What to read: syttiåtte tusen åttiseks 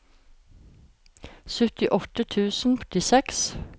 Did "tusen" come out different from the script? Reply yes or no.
no